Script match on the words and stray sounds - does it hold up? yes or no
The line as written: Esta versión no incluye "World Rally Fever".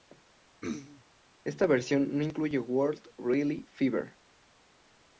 no